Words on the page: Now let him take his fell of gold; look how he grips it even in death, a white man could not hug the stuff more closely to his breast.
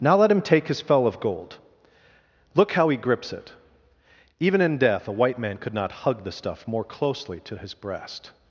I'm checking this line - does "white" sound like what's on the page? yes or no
yes